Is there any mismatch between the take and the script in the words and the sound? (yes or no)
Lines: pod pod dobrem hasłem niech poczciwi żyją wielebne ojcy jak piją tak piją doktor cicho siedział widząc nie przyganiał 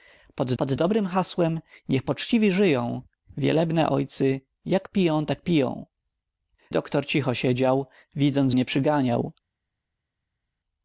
no